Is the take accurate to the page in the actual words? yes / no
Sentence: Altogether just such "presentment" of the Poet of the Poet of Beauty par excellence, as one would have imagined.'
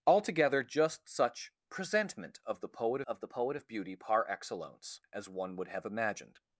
yes